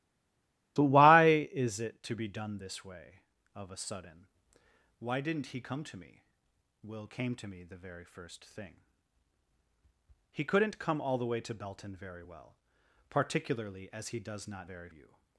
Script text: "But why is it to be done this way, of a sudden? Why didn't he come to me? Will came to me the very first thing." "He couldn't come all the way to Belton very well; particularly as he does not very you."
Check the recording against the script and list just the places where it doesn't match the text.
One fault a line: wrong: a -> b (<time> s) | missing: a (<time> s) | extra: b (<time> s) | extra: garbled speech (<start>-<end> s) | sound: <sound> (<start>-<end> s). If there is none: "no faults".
no faults